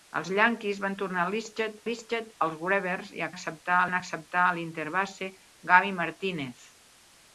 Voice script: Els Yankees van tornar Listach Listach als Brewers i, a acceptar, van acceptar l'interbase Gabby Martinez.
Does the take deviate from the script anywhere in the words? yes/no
no